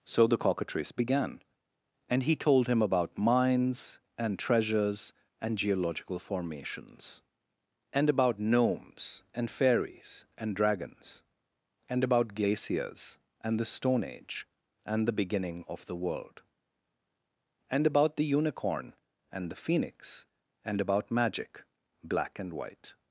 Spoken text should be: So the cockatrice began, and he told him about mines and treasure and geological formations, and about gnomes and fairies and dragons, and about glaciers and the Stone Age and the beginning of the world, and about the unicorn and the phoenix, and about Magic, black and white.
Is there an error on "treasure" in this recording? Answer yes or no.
yes